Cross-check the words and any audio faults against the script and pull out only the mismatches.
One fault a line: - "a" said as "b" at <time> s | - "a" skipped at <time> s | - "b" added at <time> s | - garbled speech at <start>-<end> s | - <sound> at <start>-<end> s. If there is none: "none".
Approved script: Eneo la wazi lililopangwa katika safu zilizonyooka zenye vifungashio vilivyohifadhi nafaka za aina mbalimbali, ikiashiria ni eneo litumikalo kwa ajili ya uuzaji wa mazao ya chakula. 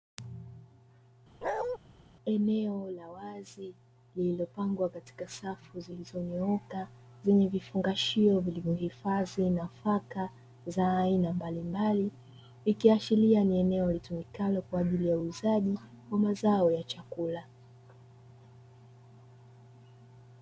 - bark at 1.4-1.8 s